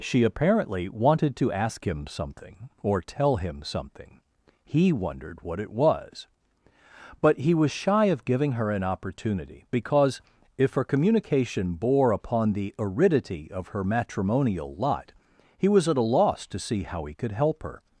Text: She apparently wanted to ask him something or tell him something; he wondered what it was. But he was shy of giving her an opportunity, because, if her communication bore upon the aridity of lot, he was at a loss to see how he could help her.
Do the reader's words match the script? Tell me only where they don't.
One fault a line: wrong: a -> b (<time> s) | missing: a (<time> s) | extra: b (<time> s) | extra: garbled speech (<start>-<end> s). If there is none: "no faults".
extra: her matrimonial (13.7 s)